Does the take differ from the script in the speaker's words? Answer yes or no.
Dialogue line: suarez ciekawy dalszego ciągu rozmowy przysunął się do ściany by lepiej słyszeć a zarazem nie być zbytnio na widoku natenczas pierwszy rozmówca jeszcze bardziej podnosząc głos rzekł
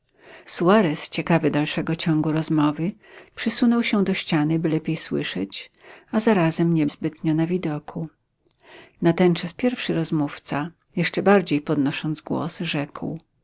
yes